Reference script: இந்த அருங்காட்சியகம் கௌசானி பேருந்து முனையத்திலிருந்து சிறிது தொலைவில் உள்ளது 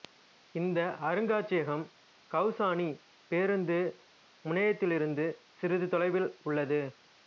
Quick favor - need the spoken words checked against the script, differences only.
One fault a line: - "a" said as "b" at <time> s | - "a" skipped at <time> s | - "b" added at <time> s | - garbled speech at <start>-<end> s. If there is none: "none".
none